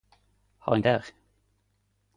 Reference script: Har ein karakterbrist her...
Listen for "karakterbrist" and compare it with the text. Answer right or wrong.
wrong